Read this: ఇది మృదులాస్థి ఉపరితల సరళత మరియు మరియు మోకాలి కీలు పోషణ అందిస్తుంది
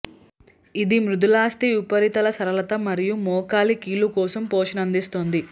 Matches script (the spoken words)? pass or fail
fail